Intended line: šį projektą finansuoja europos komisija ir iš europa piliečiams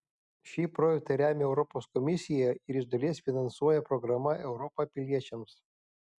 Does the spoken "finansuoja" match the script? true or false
false